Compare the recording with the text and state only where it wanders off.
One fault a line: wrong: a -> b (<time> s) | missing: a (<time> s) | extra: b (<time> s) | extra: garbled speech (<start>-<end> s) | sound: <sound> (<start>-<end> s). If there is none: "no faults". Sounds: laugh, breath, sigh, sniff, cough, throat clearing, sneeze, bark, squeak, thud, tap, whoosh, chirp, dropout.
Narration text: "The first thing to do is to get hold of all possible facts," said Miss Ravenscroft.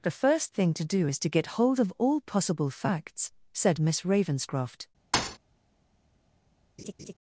sound: thud (5.1-5.4 s)
sound: laugh (6.8-7.1 s)